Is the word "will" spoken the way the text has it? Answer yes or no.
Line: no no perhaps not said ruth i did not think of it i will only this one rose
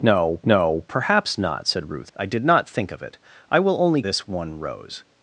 yes